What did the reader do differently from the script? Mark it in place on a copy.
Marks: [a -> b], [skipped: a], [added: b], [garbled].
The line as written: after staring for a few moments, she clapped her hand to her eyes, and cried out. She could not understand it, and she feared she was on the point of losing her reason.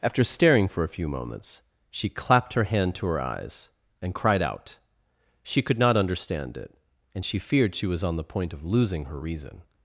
after staring for a few moments, she clapped her hand to her eyes, and cried out. She could not understand it, and she feared she was on the point of losing her reason.